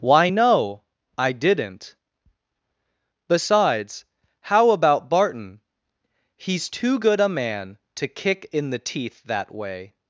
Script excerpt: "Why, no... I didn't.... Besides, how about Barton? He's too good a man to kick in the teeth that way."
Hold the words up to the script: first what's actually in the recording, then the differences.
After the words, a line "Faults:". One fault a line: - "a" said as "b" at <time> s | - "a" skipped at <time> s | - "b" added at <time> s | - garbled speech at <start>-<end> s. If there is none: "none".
"Why, no... I didn't.... Besides, how about Barton? He's too good a man to kick in the teeth that way."
Faults:
none